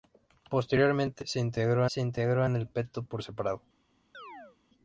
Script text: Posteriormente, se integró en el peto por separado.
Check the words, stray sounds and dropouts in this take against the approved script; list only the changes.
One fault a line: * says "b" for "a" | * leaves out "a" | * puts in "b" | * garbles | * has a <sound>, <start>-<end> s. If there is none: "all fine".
* puts in "se integró"
* has a chirp, 4.1-4.6 s